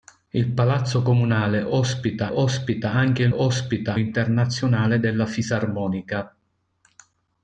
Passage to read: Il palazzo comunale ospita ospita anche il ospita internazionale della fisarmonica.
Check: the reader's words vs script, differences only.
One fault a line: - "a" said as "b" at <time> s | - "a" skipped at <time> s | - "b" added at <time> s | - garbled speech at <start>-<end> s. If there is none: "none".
none